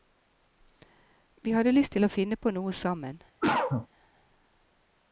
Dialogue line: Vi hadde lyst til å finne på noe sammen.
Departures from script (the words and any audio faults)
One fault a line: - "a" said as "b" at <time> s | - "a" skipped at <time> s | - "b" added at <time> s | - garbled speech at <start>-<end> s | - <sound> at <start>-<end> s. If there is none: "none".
- cough at 3.4-3.9 s